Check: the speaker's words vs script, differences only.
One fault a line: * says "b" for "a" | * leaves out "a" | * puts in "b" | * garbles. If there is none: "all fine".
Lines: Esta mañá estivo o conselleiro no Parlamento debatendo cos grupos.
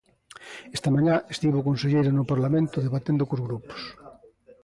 all fine